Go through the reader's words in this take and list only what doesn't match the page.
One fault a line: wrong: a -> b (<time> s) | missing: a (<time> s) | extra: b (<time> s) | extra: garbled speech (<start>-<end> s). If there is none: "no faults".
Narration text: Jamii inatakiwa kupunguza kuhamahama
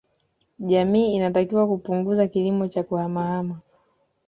extra: kilimo cha (2.3 s)